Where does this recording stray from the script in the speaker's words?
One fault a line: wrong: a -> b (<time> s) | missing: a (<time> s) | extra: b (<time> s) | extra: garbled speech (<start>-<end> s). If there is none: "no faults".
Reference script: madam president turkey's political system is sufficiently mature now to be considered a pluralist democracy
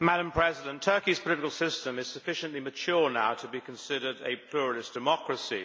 no faults